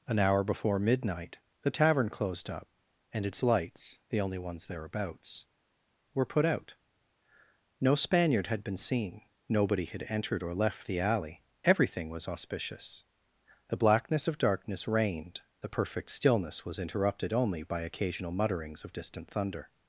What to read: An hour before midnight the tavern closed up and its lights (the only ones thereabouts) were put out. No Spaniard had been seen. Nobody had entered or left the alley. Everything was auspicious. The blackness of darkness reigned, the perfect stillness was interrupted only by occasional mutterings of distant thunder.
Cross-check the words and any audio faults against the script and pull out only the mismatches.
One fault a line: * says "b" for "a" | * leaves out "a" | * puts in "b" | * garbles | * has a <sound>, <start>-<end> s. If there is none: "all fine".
all fine